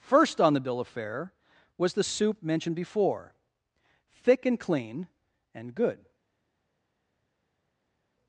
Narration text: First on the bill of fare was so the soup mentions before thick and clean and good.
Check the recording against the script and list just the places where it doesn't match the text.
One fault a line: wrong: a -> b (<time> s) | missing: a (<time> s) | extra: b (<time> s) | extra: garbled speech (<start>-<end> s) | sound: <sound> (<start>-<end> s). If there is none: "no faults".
missing: so (1.9 s)
wrong: mentions -> mentioned (2.4 s)